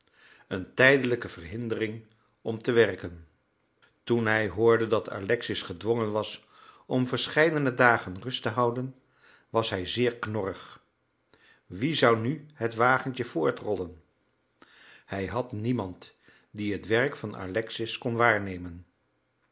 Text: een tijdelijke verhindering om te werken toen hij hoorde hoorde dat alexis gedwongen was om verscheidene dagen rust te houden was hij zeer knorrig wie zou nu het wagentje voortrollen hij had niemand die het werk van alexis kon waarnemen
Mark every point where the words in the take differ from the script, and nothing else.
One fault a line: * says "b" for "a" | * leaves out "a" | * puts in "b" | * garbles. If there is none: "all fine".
* leaves out "hoorde"